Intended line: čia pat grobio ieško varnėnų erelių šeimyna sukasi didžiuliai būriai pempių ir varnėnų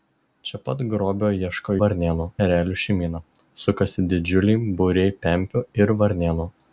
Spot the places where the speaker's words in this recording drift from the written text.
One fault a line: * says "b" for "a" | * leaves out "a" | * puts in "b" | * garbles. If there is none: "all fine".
all fine